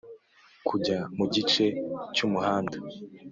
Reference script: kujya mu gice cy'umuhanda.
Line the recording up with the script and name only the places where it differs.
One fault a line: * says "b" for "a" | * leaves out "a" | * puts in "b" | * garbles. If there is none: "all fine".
all fine